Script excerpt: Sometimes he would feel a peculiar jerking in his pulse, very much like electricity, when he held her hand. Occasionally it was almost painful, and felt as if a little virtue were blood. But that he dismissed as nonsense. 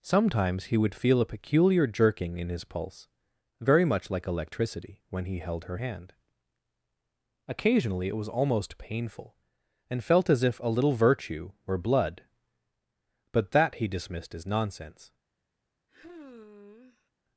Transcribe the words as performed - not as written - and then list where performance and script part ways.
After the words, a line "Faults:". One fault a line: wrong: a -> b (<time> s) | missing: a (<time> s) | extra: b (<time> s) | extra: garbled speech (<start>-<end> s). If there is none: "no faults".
Sometimes he would feel a peculiar jerking in his pulse, very much like electricity, when he held her hand. Occasionally it was almost painful, and felt as if a little virtue were blood. But that he dismissed as nonsense.
Faults:
no faults